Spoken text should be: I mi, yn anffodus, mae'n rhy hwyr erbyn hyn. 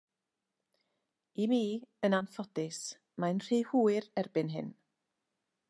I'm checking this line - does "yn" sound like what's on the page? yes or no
yes